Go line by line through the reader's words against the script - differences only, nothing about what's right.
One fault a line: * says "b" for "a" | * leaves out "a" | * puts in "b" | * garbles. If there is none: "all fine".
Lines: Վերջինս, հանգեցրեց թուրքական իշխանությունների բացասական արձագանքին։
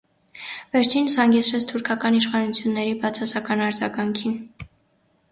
all fine